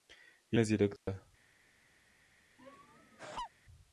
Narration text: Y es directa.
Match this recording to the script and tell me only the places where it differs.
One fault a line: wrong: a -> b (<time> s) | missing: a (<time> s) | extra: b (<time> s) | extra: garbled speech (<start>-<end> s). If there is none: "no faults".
no faults